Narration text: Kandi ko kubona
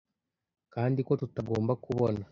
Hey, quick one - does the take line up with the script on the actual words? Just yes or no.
no